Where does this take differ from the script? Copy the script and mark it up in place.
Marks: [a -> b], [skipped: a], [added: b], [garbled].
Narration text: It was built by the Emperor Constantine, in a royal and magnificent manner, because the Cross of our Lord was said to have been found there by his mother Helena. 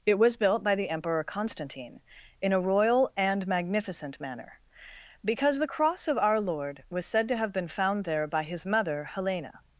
It was built by the Emperor Constantine, in a royal and magnificent manner, because the Cross of our Lord was said to have been found there by his mother Helena.